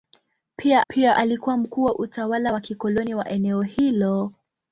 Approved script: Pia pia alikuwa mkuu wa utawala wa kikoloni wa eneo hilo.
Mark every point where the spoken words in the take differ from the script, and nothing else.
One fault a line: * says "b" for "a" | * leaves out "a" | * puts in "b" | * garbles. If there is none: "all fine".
all fine